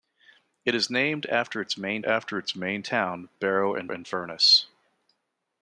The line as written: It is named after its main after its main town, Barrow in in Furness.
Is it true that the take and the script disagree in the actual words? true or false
false